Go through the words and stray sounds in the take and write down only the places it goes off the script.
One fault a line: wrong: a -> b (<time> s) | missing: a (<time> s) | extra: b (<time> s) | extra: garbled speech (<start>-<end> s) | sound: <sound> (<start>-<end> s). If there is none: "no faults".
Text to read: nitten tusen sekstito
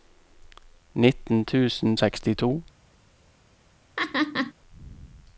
sound: laugh (4.0-4.5 s)